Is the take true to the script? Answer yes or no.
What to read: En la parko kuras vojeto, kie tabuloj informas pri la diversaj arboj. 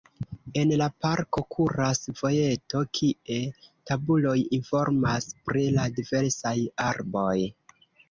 yes